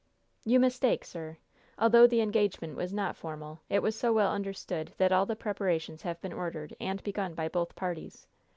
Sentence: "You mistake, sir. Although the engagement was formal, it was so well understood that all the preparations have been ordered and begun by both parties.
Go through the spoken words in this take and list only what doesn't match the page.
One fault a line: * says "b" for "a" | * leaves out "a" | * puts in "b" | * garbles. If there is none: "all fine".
* puts in "not"